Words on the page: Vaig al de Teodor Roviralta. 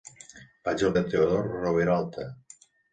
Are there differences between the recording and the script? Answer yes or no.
no